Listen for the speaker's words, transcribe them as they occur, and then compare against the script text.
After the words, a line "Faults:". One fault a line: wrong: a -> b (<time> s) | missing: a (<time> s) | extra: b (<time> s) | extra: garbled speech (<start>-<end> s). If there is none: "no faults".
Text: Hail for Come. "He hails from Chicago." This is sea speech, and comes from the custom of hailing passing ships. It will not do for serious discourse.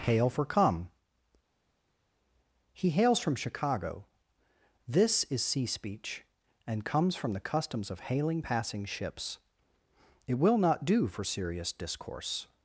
Hail for Come. "He hails from Chicago." This is sea speech, and comes from the customs of hailing passing ships. It will not do for serious discourse.
Faults:
wrong: custom -> customs (7.4 s)